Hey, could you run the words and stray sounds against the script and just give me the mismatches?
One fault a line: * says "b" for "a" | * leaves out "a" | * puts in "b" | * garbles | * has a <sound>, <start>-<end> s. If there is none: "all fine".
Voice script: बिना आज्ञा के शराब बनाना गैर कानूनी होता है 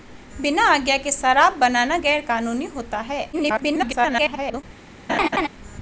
* garbles
* has a laugh, 5.1-5.5 s